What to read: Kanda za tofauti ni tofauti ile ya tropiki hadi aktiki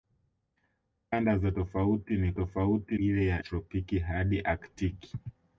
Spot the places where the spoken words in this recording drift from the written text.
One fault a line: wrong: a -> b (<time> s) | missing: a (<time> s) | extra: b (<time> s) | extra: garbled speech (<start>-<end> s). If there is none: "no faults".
no faults